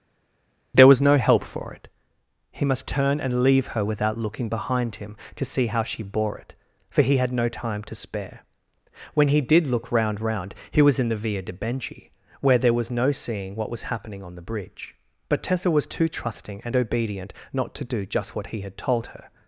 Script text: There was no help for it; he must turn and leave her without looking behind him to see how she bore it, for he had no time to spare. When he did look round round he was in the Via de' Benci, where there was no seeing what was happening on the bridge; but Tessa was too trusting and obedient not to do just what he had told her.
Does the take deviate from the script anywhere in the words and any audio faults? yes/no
no